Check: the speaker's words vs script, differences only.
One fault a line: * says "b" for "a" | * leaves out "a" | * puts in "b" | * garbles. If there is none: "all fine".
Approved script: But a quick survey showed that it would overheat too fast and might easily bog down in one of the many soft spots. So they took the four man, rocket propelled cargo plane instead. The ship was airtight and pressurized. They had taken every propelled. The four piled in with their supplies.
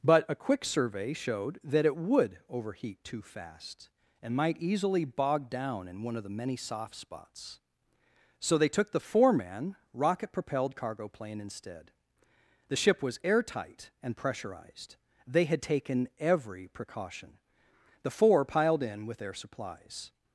* says "precaution" for "propelled"